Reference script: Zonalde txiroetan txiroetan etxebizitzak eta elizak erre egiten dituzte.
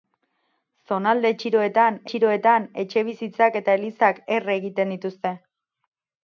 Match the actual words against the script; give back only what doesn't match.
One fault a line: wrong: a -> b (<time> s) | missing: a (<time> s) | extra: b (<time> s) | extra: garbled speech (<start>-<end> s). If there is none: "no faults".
no faults